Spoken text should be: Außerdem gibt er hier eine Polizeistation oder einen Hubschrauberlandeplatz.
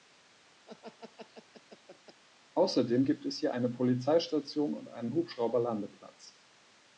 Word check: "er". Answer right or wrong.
wrong